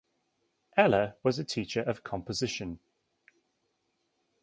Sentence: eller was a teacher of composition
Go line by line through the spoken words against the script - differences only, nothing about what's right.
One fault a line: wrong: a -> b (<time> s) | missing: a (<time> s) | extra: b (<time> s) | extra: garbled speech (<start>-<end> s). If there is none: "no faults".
no faults